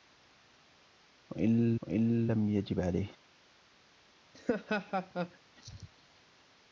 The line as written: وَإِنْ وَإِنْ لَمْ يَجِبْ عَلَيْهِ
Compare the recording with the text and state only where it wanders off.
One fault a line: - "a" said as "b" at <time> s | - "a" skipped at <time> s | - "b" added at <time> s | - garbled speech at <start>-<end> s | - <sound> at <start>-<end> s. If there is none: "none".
- laugh at 4.3-5.4 s